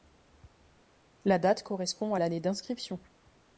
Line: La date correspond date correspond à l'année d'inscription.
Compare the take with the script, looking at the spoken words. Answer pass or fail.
fail